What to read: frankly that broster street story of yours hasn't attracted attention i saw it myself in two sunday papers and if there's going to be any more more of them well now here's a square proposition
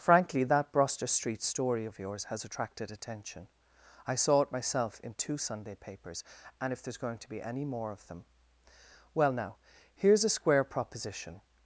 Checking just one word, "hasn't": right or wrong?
wrong